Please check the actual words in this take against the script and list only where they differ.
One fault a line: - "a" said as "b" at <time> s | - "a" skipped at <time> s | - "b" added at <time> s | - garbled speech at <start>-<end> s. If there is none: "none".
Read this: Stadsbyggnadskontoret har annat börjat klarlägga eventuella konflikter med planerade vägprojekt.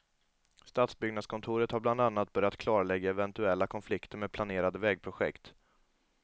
- "bland" added at 1.8 s